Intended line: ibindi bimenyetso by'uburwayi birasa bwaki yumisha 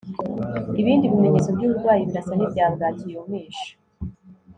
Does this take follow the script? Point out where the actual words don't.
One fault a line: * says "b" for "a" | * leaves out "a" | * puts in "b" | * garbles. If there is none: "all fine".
* puts in "n'ibya"